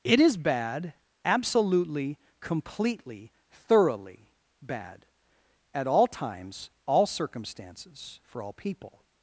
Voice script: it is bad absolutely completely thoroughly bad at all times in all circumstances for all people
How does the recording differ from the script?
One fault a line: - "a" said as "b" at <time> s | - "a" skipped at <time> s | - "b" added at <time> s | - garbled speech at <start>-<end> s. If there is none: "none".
- "in" skipped at 6.7 s